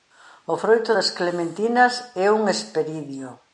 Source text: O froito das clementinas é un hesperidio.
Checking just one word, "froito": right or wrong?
right